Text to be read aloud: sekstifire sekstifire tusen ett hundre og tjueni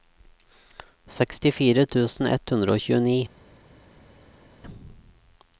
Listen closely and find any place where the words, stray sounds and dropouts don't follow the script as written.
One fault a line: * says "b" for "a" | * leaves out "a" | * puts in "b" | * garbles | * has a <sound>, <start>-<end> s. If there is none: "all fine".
* leaves out "sekstifire"